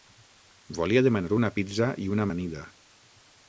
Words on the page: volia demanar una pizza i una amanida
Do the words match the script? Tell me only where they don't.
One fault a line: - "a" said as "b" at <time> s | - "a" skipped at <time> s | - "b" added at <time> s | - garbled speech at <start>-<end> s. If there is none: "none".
none